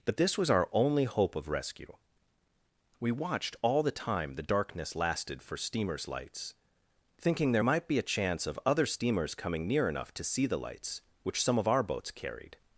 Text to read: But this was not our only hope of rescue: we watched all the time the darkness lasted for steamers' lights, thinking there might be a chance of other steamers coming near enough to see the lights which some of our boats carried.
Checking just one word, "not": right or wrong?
wrong